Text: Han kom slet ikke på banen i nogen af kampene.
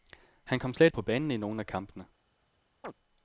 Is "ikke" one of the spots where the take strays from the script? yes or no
yes